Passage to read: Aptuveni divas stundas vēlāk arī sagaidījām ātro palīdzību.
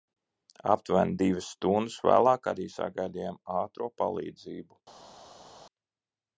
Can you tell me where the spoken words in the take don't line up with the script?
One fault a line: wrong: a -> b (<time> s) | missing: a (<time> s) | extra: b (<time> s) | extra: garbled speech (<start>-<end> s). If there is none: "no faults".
no faults